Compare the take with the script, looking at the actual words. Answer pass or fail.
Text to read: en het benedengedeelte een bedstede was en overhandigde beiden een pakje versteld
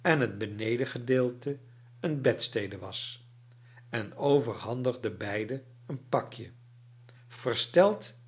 pass